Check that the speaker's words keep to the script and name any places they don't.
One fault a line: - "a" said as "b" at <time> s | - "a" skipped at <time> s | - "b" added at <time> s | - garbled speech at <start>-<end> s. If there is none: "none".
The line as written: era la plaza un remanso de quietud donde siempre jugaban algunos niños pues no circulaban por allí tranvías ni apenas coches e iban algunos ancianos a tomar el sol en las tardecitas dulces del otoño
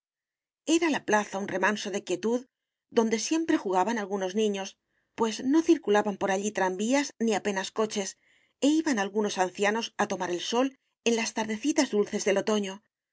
none